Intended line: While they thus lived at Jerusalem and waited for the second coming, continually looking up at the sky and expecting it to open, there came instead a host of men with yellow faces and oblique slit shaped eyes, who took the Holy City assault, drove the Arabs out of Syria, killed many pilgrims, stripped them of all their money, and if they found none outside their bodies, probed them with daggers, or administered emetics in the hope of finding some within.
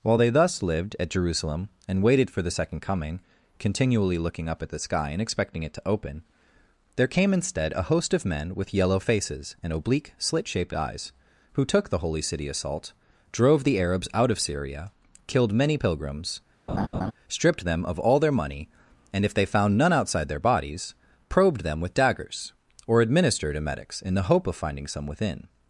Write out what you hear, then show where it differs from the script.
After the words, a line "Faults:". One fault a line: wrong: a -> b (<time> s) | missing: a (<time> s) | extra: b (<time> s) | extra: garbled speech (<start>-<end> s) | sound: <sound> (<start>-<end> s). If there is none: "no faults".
While they thus lived at Jerusalem and waited for the second coming, continually looking up at the sky and expecting it to open, there came instead a host of men with yellow faces and oblique slit shaped eyes, who took the Holy City assault, drove the Arabs out of Syria, killed many pilgrims, stripped them of all their money, and if they found none outside their bodies, probed them with daggers, or administered emetics in the hope of finding some within.
Faults:
sound: laugh (16.7-17.1 s)